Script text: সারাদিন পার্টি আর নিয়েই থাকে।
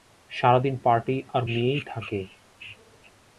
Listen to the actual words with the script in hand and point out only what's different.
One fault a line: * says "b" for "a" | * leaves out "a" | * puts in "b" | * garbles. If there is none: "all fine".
all fine